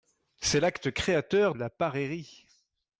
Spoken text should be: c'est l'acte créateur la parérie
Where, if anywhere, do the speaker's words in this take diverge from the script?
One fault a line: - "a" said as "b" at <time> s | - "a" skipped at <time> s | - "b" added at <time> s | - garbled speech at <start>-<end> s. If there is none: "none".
none